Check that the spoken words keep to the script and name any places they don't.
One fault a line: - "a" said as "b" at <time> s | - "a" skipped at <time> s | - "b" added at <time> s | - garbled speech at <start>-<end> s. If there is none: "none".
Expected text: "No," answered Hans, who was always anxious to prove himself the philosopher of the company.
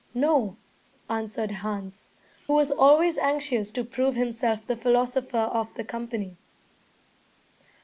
- "who" skipped at 2.1 s